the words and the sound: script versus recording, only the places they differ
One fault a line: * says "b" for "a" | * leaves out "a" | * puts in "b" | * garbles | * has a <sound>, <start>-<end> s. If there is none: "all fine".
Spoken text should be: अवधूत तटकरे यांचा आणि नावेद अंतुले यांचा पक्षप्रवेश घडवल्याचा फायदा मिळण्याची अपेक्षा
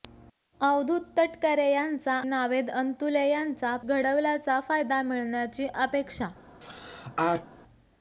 * leaves out "आणि"
* leaves out "पक्षप्रवेश"
* has a sneeze, 6.6-7.5 s